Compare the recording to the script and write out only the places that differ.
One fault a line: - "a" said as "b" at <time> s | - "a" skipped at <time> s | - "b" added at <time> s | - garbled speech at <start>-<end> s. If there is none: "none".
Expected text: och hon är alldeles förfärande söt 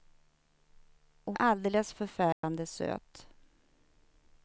- "hon" skipped at 1.4 s